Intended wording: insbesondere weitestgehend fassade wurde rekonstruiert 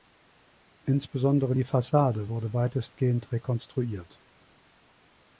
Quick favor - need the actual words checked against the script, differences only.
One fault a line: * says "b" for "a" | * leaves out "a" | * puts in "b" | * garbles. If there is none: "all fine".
* says "die" for "weitestgehend"
* puts in "weitestgehend"